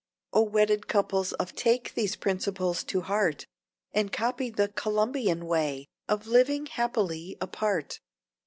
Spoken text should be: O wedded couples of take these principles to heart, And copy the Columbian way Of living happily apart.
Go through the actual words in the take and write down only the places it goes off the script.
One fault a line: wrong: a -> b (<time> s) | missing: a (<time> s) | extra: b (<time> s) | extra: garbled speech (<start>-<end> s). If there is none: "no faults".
no faults